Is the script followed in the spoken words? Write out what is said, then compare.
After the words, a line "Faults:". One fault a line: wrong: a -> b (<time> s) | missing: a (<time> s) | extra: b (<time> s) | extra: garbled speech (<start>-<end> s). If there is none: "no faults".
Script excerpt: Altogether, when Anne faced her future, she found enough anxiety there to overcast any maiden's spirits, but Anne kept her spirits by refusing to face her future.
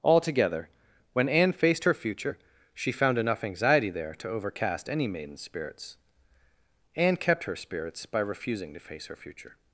Altogether, when Anne faced her future, she found enough anxiety there to overcast any maiden's spirits, Anne kept her spirits by refusing to face her future.
Faults:
missing: but (6.0 s)